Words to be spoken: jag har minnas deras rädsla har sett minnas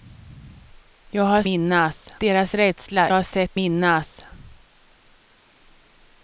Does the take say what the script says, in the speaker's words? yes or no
yes